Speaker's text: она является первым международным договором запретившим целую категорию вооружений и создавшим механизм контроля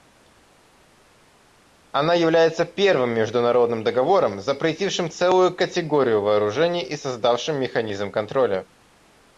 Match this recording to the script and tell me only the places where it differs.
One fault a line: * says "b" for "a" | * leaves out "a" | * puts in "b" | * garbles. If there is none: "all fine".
all fine